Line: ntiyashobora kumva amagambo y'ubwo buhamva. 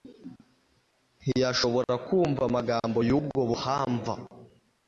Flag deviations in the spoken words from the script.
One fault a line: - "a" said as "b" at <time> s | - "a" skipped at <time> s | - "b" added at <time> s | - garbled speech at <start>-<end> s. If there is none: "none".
none